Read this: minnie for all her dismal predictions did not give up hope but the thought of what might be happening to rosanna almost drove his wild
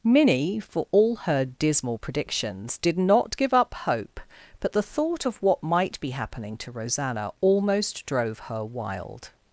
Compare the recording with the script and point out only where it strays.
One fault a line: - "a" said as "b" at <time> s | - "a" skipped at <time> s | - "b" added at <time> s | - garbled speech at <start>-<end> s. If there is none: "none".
- "his" said as "her" at 8.4 s